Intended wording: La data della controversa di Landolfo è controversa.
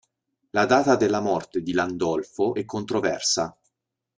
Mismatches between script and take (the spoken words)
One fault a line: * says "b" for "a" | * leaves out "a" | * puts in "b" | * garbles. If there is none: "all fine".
* says "morte" for "controversa"